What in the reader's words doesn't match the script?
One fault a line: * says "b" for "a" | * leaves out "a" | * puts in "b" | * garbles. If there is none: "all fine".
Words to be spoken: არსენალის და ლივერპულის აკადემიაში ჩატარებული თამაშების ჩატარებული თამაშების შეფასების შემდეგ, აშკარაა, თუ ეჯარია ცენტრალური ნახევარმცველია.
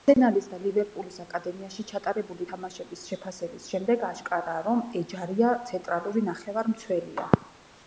* leaves out "ჩატარებული თამაშების"
* says "რომ" for "თუ"